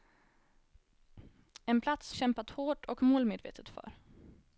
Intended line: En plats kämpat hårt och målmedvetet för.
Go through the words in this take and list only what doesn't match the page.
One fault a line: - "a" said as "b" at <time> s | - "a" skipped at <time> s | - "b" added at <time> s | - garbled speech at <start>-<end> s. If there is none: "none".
none